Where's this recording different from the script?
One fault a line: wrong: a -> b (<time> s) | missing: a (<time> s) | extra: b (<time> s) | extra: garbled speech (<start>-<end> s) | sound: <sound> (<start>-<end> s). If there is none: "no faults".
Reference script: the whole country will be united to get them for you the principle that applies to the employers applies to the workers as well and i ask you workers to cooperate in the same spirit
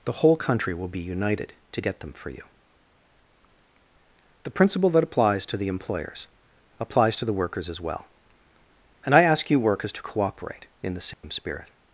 sound: dropout (11.1-11.2 s)